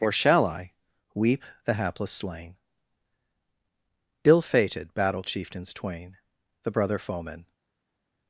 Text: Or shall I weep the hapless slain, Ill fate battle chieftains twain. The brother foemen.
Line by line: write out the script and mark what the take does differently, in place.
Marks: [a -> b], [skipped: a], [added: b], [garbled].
Or shall I weep the hapless slain, Ill [fate -> fated] battle chieftains twain. The brother foemen.